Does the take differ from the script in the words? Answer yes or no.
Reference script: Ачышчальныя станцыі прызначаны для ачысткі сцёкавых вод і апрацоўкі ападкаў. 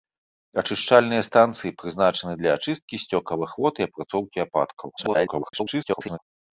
yes